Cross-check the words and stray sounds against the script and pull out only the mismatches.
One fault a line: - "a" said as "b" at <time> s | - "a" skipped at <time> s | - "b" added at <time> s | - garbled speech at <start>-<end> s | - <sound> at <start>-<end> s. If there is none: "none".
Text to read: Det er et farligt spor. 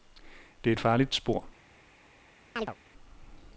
- chirp at 2.6-2.8 s